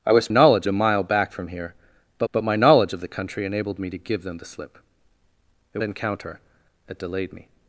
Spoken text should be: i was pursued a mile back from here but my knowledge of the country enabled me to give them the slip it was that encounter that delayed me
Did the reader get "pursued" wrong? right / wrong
wrong